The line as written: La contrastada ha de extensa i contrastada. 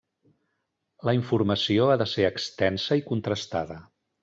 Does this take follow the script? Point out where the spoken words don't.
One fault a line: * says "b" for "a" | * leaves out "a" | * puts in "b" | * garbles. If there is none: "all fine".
* says "informació" for "contrastada"
* puts in "ser"